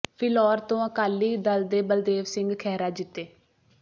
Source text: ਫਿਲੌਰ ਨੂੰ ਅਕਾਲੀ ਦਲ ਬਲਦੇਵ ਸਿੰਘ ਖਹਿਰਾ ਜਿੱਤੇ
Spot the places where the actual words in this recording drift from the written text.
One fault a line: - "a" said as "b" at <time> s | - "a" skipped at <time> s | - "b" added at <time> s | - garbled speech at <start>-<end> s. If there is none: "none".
- "ਨੂੰ" said as "ਤੋਂ" at 0.6 s
- "ਦੇ" added at 1.7 s